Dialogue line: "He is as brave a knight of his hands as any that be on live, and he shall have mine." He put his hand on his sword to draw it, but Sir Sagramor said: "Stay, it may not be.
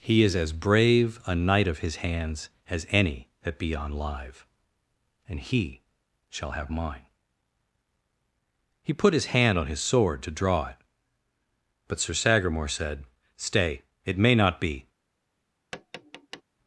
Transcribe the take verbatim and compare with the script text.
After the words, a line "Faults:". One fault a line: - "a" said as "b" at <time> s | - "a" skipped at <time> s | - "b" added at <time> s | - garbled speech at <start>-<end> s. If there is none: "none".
"He is as brave a knight of his hands as any that be on live, and he shall have mine." He put his hand on his sword to draw it, but Sir Sagramor said: "Stay, it may not be.
Faults:
none